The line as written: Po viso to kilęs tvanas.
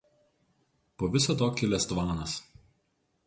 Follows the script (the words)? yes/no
yes